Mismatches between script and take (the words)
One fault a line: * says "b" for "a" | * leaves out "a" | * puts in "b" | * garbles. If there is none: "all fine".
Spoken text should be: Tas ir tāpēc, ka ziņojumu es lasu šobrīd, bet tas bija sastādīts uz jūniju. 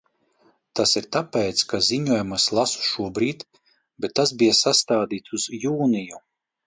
all fine